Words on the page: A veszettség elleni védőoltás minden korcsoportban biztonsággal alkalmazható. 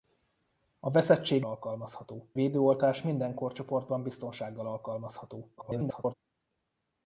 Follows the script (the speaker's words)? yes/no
no